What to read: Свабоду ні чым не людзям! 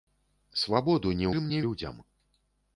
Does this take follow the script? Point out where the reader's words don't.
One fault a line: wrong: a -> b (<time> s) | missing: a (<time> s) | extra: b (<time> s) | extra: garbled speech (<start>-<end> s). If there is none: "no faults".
no faults